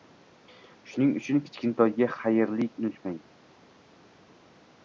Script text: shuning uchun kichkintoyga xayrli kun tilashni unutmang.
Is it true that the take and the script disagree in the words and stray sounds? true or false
true